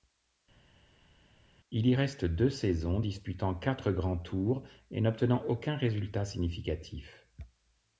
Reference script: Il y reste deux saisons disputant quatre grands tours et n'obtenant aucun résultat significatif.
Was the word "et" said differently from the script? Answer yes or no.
no